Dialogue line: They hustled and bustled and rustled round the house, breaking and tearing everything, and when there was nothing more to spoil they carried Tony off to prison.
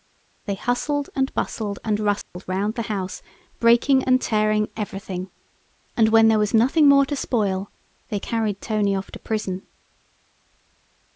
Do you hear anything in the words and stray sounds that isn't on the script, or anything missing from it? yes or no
yes